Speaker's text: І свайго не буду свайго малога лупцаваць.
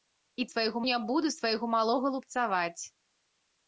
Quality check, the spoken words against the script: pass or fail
pass